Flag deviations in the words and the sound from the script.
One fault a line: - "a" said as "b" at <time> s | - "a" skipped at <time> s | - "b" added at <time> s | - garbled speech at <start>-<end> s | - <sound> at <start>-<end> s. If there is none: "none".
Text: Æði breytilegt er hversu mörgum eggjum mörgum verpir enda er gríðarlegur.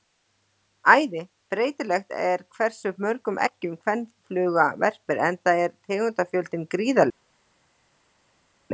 - "mörgum" said as "kvenfluga" at 3.9 s
- "tegundafjöldinn" added at 5.9 s